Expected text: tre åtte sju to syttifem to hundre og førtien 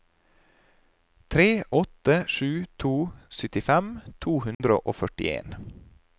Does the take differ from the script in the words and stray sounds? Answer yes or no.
yes